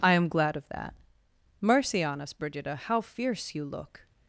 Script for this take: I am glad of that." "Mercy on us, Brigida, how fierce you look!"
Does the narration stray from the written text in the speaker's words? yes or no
no